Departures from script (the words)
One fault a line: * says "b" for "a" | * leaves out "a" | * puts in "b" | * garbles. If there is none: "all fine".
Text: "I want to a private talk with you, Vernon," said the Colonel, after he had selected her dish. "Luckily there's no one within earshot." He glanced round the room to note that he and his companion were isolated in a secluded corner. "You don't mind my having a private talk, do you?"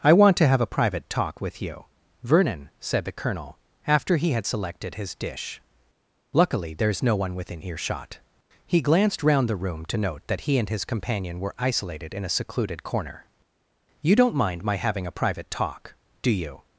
* puts in "have"
* says "his" for "her"